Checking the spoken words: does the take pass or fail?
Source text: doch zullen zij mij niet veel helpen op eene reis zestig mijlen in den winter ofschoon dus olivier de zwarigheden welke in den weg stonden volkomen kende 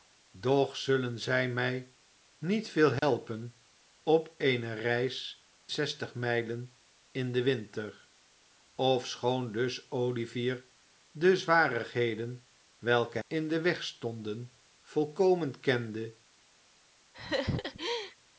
pass